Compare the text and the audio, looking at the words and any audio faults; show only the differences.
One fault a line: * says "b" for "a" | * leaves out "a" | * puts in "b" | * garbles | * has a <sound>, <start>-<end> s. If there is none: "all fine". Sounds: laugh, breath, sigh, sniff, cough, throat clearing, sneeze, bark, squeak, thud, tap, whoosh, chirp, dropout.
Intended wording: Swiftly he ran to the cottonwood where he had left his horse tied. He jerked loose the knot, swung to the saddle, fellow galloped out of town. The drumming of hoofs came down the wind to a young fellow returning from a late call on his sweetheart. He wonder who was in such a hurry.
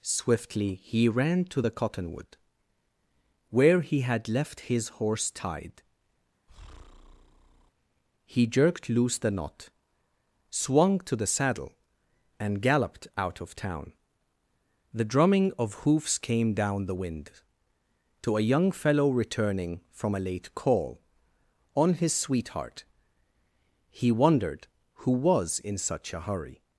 * has a breath, 6.5-7.7 s
* says "and" for "fellow"
* says "wondered" for "wonder"